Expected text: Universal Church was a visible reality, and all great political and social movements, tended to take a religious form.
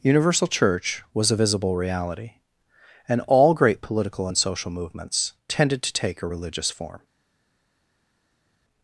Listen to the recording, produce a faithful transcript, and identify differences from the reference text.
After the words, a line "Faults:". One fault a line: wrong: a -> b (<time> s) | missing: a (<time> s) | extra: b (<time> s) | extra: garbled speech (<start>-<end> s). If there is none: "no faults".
Universal Church was a visible reality, and all great political and social movements, tended to take a religious form.
Faults:
no faults